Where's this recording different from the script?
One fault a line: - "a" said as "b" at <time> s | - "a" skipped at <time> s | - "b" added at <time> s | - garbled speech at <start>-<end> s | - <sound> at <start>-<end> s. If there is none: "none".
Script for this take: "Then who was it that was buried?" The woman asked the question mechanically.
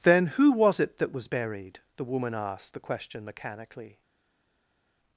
none